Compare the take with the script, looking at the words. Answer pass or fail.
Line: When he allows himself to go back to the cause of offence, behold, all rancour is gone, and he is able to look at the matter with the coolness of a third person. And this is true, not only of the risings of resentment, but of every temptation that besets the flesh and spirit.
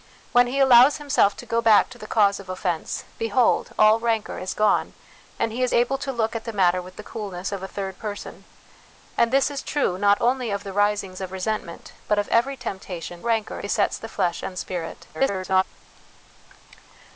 fail